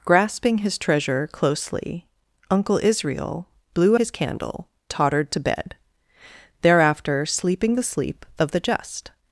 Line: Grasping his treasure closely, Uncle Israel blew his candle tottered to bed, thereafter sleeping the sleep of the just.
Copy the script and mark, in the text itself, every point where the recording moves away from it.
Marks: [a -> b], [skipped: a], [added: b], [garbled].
Grasping his treasure closely, Uncle Israel blew his candle tottered to bed, thereafter sleeping the sleep of the just.